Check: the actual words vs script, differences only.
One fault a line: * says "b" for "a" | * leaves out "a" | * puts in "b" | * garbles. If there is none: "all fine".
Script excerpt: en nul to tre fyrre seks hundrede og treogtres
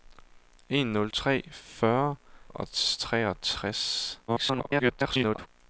* leaves out "to"
* leaves out "seks hundrede"
* garbles